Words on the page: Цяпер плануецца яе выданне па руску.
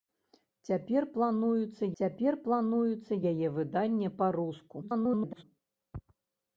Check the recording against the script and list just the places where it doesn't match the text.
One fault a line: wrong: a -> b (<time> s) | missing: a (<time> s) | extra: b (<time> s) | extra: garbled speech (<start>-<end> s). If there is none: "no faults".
extra: цяпер плануецца (2.0 s)
extra: garbled speech (4.8-5.4 s)